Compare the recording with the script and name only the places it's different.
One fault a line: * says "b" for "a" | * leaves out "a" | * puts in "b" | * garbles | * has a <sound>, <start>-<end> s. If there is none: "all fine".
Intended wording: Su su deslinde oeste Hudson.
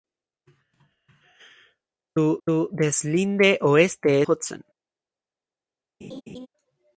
* has a laugh, 6.0-6.5 s